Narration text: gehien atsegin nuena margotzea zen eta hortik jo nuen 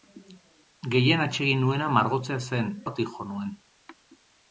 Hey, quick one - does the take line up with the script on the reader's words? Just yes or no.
no